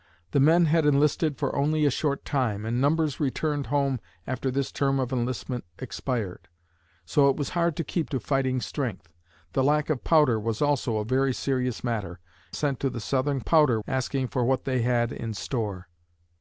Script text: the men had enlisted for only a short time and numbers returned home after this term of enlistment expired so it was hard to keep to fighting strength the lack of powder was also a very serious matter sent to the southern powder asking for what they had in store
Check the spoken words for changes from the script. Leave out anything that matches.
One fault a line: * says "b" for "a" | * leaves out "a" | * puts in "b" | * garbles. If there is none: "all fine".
all fine